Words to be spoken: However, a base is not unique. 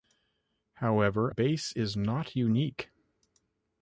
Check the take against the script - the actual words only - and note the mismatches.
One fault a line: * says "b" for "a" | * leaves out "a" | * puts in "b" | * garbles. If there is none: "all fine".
* leaves out "a"